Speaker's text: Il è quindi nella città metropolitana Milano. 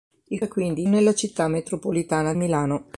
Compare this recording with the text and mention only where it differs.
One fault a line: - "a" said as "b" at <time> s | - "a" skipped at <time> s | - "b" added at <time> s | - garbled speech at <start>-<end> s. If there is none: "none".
none